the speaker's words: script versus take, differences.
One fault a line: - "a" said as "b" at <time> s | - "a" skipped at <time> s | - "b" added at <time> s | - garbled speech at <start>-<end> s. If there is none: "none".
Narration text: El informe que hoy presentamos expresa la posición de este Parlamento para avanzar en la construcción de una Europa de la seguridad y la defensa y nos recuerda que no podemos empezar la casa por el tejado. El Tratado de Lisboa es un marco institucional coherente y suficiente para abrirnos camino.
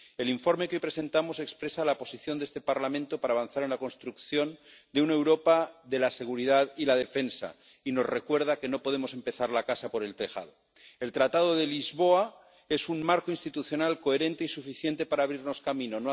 none